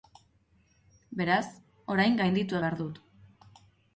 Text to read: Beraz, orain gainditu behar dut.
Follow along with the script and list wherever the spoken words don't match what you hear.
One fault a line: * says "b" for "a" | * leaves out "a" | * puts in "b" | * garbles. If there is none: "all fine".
all fine